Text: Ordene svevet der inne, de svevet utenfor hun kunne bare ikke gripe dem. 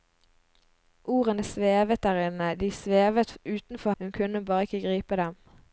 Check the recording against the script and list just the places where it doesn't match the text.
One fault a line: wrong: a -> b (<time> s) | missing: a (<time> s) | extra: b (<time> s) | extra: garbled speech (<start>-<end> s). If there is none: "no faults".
no faults